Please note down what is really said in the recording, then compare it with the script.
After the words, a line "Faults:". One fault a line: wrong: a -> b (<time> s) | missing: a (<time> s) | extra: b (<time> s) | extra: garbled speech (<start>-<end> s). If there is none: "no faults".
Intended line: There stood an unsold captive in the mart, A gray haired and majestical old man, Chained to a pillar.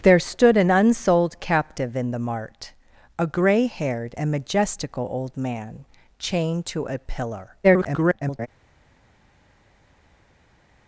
There stood an unsold captive in the mart, A gray haired and majestical old man, Chained to a pillar. [garbled]
Faults:
extra: garbled speech (7.6-8.5 s)